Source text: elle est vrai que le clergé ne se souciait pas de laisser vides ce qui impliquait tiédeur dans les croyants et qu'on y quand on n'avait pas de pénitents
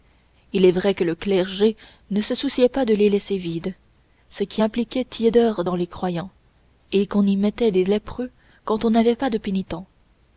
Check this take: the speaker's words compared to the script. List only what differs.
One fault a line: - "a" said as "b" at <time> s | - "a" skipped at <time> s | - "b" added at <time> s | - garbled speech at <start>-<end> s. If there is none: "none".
- "elle" said as "il" at 0.5 s
- "les" added at 3.0 s
- "mettait des lépreux" added at 7.4 s